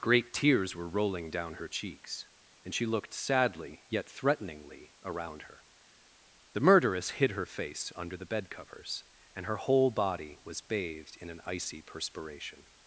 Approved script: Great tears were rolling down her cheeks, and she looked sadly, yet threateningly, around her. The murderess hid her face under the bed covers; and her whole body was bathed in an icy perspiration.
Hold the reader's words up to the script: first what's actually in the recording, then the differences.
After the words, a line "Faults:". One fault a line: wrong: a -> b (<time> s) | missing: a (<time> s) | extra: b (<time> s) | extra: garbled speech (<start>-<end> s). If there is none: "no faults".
Great tears were rolling down her cheeks, and she looked sadly, yet threateningly, around her. The murderess hid her face under the bed covers; and her whole body was bathed in an icy perspiration.
Faults:
no faults